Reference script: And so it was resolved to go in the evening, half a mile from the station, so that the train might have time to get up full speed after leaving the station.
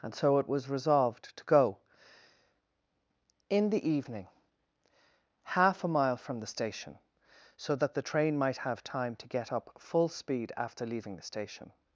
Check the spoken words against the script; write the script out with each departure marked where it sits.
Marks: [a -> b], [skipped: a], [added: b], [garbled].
And so it was resolved to go in the evening, half a mile from the station, so that the train might have time to get up full speed after leaving the station.